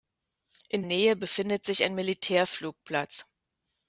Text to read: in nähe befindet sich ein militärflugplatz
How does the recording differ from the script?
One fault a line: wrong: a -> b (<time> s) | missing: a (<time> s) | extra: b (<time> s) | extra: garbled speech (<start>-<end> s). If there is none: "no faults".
no faults